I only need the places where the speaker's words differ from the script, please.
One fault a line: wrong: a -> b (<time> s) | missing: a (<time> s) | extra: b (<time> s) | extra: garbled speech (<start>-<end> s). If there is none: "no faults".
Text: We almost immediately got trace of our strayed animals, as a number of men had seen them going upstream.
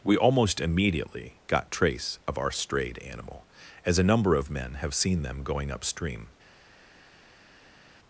wrong: animals -> animal (3.0 s)
wrong: had -> have (4.8 s)